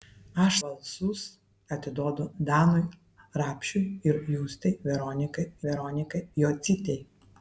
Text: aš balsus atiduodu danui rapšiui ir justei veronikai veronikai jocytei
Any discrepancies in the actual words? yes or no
no